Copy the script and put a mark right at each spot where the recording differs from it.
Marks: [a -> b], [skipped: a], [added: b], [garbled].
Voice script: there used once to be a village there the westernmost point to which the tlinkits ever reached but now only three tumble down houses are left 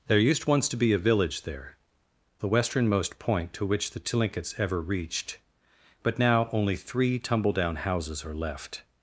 there used once to be a village there the westernmost point to which the tlinkits ever reached but now only three tumble down houses are left